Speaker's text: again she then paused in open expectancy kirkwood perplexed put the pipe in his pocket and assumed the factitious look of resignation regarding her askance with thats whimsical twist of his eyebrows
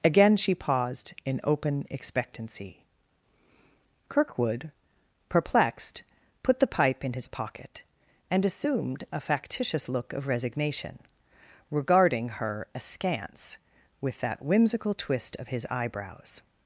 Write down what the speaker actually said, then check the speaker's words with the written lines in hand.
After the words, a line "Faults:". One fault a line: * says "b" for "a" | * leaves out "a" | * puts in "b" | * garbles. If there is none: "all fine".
again she paused in open expectancy kirkwood perplexed put the pipe in his pocket and assumed a factitious look of resignation regarding her askance with that whimsical twist of his eyebrows
Faults:
* leaves out "then"
* says "a" for "the"
* says "that" for "thats"